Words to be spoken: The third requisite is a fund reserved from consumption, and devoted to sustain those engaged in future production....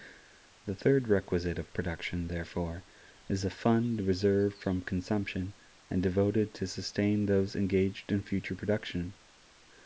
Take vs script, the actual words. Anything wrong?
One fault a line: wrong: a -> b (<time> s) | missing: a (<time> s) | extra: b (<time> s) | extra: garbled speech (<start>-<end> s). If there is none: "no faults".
extra: of production therefore (1.6 s)